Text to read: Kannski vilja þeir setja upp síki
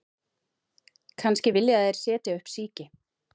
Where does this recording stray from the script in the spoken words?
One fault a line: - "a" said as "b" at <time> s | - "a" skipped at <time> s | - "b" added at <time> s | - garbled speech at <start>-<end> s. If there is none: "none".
none